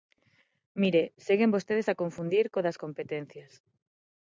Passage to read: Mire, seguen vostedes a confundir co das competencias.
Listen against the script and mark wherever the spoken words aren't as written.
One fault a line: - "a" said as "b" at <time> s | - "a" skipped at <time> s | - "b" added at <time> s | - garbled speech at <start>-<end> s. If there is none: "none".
none